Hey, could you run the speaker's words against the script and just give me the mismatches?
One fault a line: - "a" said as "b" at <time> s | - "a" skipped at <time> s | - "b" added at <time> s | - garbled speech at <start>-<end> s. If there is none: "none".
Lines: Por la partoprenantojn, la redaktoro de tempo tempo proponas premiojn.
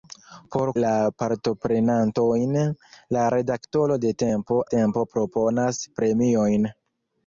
none